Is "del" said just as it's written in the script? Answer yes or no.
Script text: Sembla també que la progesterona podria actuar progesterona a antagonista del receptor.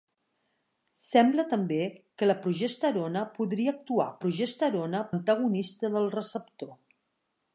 yes